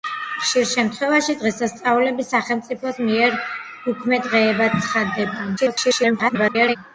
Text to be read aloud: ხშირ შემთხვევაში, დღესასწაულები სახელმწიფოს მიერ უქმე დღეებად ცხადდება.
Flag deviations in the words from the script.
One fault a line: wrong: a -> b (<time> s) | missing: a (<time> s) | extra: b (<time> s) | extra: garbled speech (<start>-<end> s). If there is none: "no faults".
extra: garbled speech (5.6-6.8 s)